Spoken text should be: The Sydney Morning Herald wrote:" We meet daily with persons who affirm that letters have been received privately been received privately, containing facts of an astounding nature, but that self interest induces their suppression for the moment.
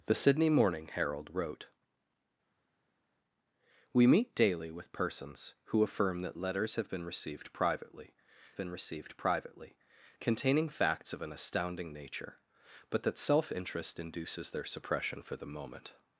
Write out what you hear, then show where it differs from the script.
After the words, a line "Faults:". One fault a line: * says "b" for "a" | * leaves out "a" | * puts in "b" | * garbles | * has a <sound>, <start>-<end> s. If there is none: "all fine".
The Sydney Morning Herald wrote:" We meet daily with persons who affirm that letters have been received privately been received privately, containing facts of an astounding nature, but that self interest induces their suppression for the moment.
Faults:
all fine